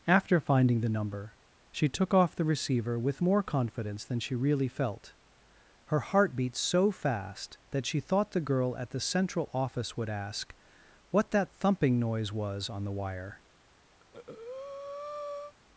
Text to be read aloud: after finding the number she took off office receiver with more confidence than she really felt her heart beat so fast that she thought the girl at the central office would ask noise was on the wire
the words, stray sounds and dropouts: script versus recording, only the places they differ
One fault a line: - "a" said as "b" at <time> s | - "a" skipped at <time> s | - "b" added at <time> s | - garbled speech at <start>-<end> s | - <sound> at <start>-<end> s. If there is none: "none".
- "office" said as "the" at 2.4 s
- "what that thumping" added at 11.1 s
- breath at 14.0-15.5 s